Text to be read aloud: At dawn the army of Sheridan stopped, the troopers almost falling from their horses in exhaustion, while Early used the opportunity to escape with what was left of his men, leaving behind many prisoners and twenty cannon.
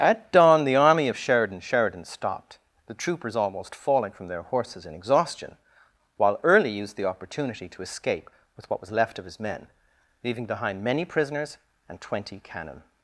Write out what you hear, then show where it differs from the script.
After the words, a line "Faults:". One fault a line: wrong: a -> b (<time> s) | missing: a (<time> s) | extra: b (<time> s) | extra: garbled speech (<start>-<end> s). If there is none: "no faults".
At dawn the army of Sheridan Sheridan stopped, the troopers almost falling from their horses in exhaustion, while Early used the opportunity to escape with what was left of his men, leaving behind many prisoners and twenty cannon.
Faults:
extra: Sheridan (1.6 s)